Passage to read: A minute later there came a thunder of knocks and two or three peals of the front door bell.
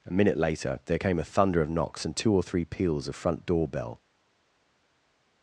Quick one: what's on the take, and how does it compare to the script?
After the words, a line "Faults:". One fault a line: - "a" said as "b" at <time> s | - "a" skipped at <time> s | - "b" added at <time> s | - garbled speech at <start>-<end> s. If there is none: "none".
A minute later there came a thunder of knocks and two or three peals of front door bell.
Faults:
- "the" skipped at 3.2 s